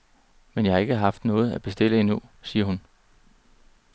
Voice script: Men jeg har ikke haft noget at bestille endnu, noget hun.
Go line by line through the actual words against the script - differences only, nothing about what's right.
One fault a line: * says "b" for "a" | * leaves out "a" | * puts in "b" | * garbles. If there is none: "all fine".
* says "siger" for "noget"